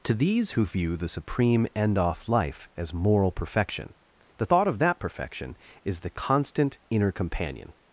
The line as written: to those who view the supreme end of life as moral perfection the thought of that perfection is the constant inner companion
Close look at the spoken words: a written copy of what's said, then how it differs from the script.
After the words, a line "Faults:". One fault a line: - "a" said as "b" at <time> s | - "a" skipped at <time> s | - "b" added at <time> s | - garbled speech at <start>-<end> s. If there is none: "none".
to these who view the supreme end off life as moral perfection the thought of that perfection is the constant inner companion
Faults:
- "those" said as "these" at 0.1 s
- "of" said as "off" at 2.0 s